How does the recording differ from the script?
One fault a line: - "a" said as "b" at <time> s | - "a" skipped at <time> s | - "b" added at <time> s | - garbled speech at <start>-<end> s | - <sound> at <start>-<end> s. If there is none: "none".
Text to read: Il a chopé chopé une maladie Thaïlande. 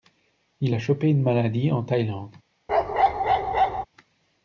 - "chopé" skipped at 1.1 s
- "en" added at 1.7 s
- bark at 2.7-3.9 s